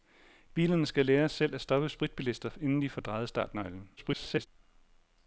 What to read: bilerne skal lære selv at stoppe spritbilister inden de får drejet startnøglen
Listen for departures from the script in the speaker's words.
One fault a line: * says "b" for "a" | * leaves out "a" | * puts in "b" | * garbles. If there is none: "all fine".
* garbles